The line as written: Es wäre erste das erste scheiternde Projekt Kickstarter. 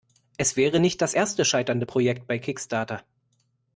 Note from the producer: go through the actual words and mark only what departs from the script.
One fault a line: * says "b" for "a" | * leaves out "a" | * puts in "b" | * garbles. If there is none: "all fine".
* says "nicht" for "erste"
* puts in "bei"